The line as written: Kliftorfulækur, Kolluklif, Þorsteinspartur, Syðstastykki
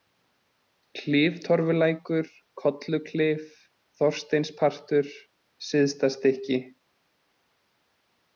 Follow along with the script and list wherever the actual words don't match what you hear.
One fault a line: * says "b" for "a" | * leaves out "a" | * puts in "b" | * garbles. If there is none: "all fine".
all fine